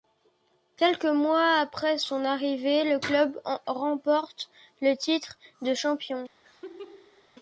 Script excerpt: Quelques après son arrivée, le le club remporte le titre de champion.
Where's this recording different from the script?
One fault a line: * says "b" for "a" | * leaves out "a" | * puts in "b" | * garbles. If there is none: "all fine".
* puts in "mois"
* leaves out "le"